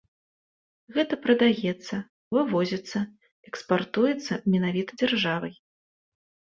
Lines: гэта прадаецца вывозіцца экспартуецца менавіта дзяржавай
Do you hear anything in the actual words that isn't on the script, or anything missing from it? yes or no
no